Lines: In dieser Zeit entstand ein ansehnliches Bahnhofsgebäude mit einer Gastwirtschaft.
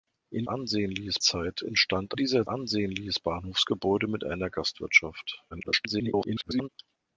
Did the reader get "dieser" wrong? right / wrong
wrong